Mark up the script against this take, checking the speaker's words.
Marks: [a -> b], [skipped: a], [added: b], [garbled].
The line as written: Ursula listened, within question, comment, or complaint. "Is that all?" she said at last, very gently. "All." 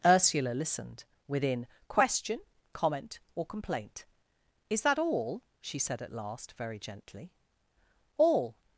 Ursula listened, within question, comment, or complaint. "Is that all?" she said at last, very gently. "All."